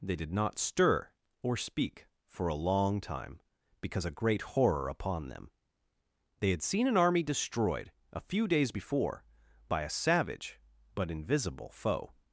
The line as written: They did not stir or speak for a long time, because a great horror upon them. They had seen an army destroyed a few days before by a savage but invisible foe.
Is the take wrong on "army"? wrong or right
right